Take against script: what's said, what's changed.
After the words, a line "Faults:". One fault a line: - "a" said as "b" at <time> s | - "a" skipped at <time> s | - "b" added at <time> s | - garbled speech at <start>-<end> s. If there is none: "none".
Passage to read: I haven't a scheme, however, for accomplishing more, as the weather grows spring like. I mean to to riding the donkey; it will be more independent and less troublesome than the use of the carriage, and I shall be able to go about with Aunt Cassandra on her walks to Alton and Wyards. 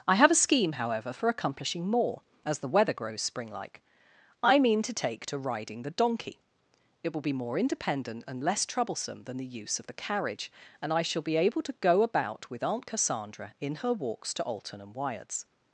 I have a scheme, however, for accomplishing more, as the weather grows spring like. I mean to take to riding the donkey; it will be more independent and less troublesome than the use of the carriage, and I shall be able to go about with Aunt Cassandra in her walks to Alton and Wyards.
Faults:
- "haven't" said as "have" at 0.1 s
- "take" added at 4.9 s
- "on" said as "in" at 13.6 s